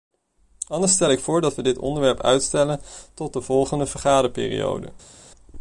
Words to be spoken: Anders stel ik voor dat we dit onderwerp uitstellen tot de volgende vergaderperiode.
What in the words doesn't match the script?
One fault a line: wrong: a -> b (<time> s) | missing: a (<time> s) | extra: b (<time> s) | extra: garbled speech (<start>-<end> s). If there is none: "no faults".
no faults